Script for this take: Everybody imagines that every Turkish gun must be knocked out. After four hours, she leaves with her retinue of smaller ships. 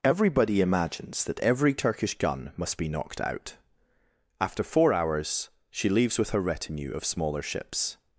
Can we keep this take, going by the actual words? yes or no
yes